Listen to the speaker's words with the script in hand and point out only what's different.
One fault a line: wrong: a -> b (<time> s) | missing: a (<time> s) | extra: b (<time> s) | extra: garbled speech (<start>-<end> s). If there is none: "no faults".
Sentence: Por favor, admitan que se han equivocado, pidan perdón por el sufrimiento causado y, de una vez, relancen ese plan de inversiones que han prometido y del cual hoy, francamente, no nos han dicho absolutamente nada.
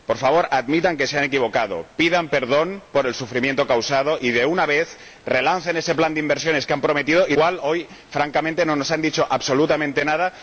missing: del (7.3 s)